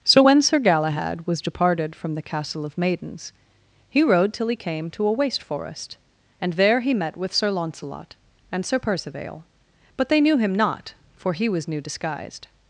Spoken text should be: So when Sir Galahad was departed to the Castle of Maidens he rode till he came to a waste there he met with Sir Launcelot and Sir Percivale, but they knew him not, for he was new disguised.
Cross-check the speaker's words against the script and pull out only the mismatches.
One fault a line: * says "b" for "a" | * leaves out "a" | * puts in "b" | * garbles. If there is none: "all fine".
* says "from" for "to"
* puts in "forest and"